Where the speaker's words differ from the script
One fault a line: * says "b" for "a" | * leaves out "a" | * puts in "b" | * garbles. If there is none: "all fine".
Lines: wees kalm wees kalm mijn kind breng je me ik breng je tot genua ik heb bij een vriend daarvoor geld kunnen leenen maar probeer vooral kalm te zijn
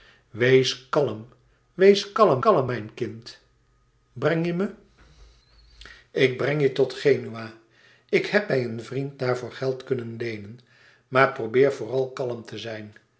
* puts in "kalm"